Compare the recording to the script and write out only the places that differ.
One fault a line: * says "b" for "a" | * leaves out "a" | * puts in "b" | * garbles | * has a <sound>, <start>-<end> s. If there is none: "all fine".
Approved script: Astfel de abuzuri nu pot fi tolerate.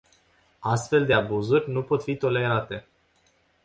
all fine